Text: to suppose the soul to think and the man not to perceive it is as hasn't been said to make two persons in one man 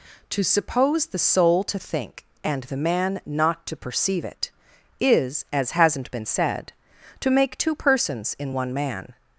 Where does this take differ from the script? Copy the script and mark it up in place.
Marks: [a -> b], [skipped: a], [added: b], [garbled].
to suppose the soul to think and the man not to perceive it is as hasn't been said to make two persons in one man